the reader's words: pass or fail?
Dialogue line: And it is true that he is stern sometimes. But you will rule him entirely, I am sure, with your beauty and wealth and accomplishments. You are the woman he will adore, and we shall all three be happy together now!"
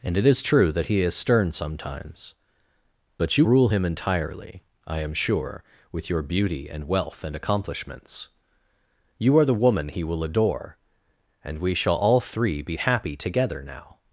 fail